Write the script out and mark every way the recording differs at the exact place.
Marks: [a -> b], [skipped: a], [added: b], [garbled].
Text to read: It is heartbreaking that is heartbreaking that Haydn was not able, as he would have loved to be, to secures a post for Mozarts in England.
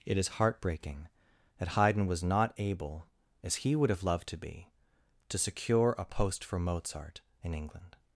It is heartbreaking that [skipped: is heartbreaking that] Haydn was not able, as he would have loved to be, to [secures -> secure] a post for [Mozarts -> Mozart] in England.